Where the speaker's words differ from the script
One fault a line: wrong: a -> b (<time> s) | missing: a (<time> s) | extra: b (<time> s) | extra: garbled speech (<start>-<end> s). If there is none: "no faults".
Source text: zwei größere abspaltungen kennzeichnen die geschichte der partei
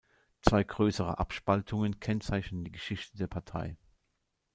no faults